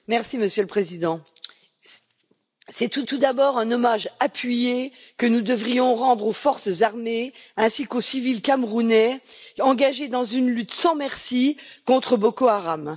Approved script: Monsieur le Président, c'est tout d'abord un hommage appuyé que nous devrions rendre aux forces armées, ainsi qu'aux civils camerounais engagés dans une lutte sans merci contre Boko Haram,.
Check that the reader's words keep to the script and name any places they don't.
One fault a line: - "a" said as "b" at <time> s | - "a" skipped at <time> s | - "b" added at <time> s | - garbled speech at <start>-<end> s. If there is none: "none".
- "tout" added at 3.0 s